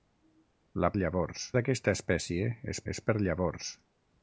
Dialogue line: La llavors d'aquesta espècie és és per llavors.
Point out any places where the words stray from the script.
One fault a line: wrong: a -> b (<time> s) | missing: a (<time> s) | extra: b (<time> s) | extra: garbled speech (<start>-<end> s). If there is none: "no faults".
no faults